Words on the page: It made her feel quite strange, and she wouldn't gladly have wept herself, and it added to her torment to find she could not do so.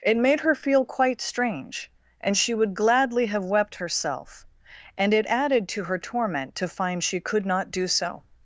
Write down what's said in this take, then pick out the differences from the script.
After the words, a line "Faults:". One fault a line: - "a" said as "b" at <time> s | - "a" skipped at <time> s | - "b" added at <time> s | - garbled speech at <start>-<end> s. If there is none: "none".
It made her feel quite strange, and she would gladly have wept herself, and it added to her torment to find she could not do so.
Faults:
- "wouldn't" said as "would" at 2.5 s